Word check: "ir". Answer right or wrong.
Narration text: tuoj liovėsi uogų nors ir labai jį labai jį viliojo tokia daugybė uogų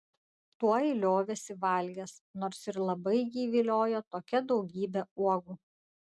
right